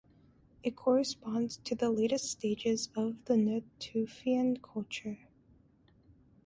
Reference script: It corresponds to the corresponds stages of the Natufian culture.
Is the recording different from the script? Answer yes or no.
yes